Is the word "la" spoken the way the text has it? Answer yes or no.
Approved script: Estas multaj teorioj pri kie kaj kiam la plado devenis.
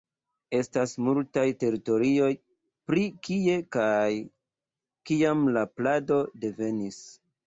yes